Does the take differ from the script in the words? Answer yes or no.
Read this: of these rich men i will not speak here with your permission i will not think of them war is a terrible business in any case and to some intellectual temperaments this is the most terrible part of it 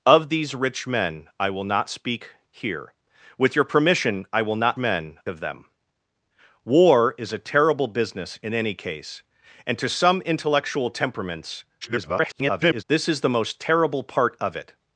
yes